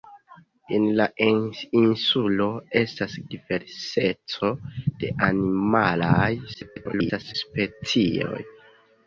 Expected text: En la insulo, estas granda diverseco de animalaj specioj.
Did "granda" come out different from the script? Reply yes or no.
yes